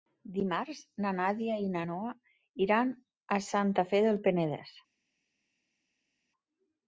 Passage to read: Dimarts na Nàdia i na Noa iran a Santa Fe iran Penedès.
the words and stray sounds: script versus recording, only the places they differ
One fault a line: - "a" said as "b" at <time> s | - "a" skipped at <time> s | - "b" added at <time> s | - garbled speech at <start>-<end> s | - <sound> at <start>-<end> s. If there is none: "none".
- "iran" said as "del" at 4.1 s